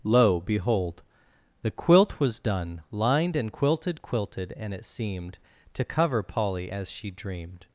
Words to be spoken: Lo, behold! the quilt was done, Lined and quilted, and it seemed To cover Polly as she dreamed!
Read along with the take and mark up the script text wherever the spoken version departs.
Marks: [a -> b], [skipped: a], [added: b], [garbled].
Lo, behold! the quilt was done, Lined and quilted, [added: quilted] and it seemed To cover Polly as she dreamed!